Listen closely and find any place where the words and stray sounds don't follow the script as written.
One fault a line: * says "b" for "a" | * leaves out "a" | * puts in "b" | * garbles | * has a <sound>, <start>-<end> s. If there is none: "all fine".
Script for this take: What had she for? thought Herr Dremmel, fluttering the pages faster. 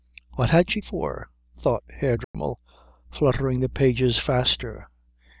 * has a dropout, 2.2-2.3 s